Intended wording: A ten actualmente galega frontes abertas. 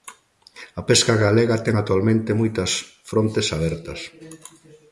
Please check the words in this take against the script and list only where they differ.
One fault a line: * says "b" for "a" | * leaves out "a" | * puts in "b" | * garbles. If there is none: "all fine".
* puts in "pesca galega"
* says "moitas" for "galega"